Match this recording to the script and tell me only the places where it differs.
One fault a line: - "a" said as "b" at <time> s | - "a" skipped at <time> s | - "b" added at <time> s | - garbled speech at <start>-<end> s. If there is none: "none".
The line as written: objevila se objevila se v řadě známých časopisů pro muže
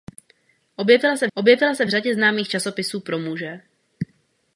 none